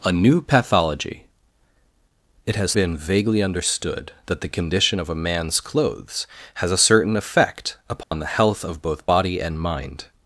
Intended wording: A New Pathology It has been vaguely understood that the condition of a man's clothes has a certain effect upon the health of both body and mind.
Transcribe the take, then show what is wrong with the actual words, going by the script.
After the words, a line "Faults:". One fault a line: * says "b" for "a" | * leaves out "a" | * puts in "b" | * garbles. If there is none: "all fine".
A New Pathology It has been vaguely understood that the condition of a man's clothes has a certain effect upon the health of both body and mind.
Faults:
all fine